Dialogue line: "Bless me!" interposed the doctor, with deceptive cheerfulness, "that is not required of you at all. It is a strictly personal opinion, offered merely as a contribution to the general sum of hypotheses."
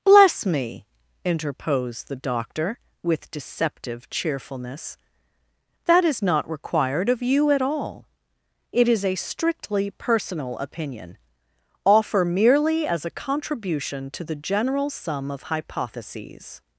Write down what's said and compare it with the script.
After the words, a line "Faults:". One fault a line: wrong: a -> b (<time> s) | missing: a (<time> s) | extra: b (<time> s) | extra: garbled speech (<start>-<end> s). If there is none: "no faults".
"Bless me!" interposed the doctor, with deceptive cheerfulness, "that is not required of you at all. It is a strictly personal opinion, offer merely as a contribution to the general sum of hypotheses."
Faults:
wrong: offered -> offer (11.8 s)